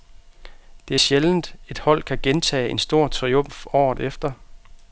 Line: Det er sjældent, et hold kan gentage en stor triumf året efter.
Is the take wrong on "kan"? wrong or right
right